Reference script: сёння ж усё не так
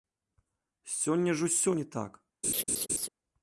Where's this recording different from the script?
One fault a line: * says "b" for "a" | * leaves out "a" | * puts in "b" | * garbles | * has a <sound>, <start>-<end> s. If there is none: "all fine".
* has a laugh, 2.4-3.1 s